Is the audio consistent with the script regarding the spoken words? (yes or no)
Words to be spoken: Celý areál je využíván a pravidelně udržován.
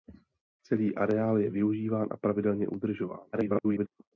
no